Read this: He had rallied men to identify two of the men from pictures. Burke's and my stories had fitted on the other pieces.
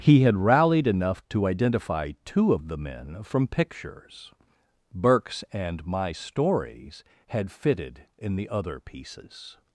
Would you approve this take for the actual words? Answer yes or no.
no